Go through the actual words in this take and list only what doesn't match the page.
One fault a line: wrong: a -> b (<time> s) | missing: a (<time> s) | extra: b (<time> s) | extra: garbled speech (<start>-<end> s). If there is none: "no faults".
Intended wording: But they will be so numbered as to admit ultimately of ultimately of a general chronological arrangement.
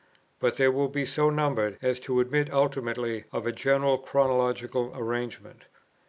missing: ultimately of (3.5 s)